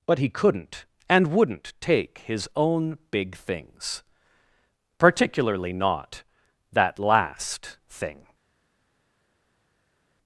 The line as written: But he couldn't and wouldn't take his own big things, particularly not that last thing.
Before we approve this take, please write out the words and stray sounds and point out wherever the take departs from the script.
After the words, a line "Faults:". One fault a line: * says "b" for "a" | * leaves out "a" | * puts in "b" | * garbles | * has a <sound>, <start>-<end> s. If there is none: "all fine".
But he couldn't and wouldn't take his own big things, particularly not that last thing.
Faults:
all fine